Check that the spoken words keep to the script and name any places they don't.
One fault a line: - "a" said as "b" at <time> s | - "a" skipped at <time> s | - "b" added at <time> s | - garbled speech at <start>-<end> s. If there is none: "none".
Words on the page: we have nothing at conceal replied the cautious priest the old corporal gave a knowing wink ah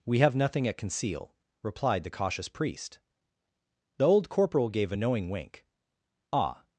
none